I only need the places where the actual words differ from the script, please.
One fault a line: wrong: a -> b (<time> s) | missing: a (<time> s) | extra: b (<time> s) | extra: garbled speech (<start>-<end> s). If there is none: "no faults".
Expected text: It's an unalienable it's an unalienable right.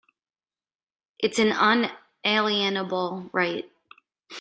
missing: it's an unalienable (3.3 s)